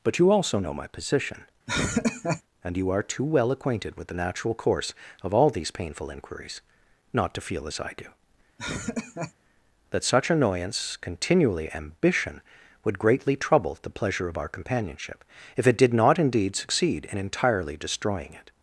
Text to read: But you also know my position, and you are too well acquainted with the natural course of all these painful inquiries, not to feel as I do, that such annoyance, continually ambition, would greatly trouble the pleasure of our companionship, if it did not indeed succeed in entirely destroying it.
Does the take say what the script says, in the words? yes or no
yes